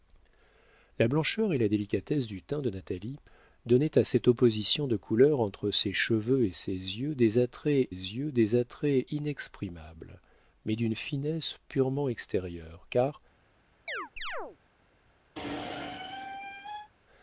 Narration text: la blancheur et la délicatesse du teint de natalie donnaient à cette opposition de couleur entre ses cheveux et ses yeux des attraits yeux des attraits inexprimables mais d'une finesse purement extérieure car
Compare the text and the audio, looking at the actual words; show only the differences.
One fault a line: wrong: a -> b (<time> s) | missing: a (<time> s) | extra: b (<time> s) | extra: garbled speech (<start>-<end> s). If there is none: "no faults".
no faults